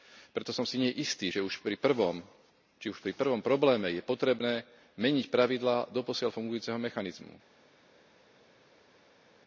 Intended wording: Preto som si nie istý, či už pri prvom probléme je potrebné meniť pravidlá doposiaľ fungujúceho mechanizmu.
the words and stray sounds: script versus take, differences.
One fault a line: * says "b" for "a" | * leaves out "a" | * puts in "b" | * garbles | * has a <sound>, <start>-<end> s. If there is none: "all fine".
all fine